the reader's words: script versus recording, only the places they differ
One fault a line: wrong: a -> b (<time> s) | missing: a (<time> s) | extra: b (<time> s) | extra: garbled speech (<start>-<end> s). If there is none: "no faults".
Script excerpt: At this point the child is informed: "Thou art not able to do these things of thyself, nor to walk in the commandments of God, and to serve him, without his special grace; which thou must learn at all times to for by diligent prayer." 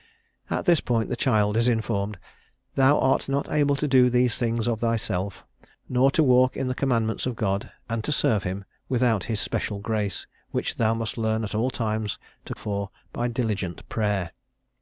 no faults